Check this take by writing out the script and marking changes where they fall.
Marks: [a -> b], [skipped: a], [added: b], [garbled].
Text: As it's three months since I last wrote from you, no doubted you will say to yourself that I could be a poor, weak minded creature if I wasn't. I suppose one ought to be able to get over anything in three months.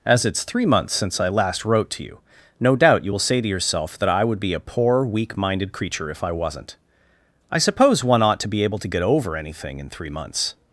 As it's three months since I last wrote [from -> to] you, no [doubted -> doubt] you will say to yourself that I [could -> would] be a poor, weak minded creature if I wasn't. I suppose one ought to be able to get over anything in three months.